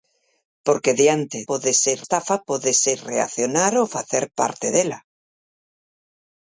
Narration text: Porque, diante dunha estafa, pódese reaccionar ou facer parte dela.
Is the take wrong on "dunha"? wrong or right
wrong